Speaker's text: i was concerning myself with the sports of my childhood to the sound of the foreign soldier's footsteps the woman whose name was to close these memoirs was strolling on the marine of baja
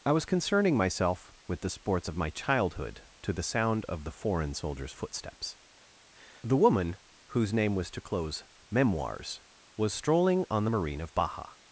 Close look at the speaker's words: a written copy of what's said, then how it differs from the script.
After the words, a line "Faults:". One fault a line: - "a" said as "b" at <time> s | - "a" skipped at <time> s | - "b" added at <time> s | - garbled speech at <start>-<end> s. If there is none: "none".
i was concerning myself with the sports of my childhood to the sound of the foreign soldier's footsteps the woman whose name was to close memoirs was strolling on the marine of baja
Faults:
- "these" skipped at 8.4 s